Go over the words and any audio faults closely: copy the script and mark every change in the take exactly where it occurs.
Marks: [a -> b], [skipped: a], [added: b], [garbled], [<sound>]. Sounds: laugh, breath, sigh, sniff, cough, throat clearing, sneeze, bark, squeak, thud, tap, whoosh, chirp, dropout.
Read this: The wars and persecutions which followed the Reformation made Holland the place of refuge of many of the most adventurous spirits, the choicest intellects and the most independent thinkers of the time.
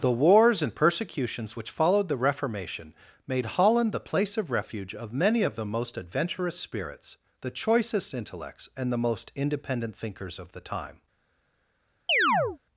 The wars and persecutions which followed the Reformation made Holland the place of refuge of many of the most adventurous spirits, the choicest intellects and the most independent thinkers of the time. [chirp]